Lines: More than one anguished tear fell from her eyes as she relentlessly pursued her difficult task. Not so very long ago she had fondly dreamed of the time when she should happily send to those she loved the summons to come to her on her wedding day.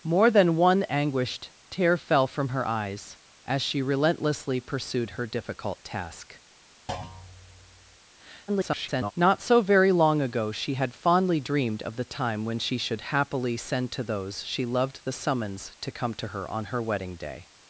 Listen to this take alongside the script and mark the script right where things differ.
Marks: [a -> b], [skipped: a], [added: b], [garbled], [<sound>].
More than one anguished tear fell from her eyes as she relentlessly pursued her difficult task. [thud] [garbled] Not so very long ago she had fondly dreamed of the time when she should happily send to those she loved the summons to come to her on her wedding day.